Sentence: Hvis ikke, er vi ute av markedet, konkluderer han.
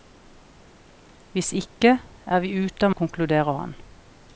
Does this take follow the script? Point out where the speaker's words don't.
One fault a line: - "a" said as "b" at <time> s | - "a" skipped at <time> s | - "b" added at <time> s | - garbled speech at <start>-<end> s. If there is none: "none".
- "markedet" skipped at 3.0 s